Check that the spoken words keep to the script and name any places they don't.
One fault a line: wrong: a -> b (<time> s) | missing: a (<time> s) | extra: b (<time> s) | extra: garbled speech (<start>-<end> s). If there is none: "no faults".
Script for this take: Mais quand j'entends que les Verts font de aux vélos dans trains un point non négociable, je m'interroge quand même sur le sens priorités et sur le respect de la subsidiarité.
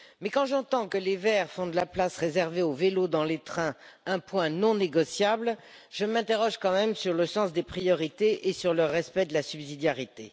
extra: la place réservée (1.8 s)
extra: les (3.3 s)
extra: des (7.5 s)